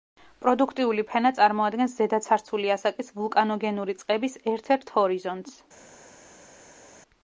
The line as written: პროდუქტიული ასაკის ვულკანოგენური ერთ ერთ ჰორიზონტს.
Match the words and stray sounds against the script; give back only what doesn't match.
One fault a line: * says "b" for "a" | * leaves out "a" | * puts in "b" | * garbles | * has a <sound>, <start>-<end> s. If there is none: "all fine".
* puts in "ფენა წარმოადგენს ზედაცარცული"
* puts in "წყების"